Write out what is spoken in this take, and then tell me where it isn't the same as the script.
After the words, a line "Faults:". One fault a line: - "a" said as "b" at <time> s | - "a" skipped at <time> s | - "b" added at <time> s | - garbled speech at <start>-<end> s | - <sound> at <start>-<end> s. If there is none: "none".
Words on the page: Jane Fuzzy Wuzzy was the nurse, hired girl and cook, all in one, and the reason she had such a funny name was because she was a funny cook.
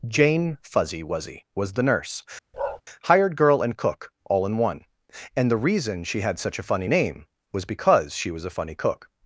Jane Fuzzy Wuzzy was the nurse, hired girl and cook, all in one, and the reason she had such a funny name was because she was a funny cook.
Faults:
- bark at 2.5-2.8 s